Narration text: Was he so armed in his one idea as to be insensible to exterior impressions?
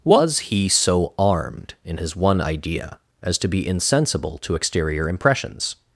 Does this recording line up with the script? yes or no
yes